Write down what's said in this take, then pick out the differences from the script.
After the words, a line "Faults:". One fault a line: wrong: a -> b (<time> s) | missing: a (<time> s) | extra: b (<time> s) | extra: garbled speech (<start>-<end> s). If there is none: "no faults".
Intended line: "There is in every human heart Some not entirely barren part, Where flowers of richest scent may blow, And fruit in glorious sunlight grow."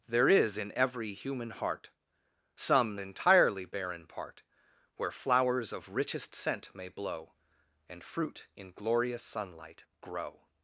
"There is in every human heart Some entirely barren part, Where flowers of richest scent may blow, And fruit in glorious sunlight grow."
Faults:
missing: not (3.0 s)